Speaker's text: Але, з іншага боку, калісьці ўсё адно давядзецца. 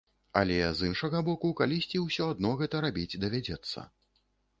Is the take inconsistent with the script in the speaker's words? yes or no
yes